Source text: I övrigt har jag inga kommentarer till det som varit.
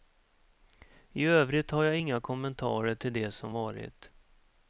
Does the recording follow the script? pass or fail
pass